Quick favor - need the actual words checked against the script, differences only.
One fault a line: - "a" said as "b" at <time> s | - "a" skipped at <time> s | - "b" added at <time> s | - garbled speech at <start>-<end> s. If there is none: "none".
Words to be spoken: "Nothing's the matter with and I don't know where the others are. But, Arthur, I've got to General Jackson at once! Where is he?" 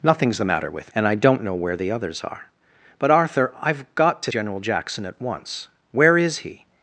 none